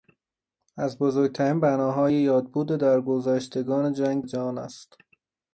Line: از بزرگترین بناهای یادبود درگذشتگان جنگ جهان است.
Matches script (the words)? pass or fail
pass